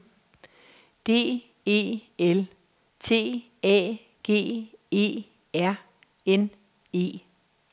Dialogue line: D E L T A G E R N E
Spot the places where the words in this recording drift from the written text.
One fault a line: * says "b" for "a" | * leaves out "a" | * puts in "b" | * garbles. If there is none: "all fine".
all fine